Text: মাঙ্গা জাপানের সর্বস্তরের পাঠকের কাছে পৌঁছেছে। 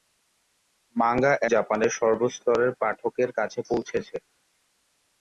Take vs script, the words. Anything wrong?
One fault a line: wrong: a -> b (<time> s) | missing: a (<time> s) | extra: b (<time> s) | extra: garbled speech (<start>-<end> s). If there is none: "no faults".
no faults